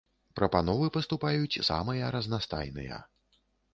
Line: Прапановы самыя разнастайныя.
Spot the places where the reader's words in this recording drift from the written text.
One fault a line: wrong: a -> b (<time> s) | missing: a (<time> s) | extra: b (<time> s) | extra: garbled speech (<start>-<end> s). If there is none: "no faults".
extra: паступаюць (0.9 s)